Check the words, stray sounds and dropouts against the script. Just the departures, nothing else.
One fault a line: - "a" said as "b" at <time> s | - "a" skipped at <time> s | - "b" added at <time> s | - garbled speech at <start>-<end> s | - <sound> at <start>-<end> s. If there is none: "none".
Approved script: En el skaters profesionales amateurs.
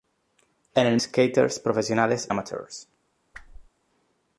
- whoosh at 3.3-3.7 s